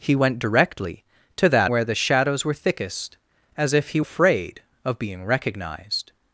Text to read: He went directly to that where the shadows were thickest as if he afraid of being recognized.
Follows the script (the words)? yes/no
yes